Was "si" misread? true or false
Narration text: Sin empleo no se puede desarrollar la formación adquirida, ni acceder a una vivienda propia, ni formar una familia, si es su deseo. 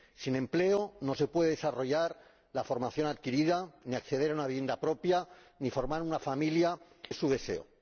true